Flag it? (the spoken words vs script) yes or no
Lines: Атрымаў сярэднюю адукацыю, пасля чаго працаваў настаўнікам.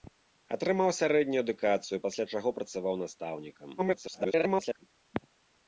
yes